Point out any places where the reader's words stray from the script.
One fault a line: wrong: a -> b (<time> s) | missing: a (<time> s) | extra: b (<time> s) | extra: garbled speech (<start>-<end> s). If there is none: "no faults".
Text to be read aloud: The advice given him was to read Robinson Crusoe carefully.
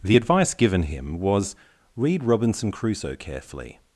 missing: to (1.6 s)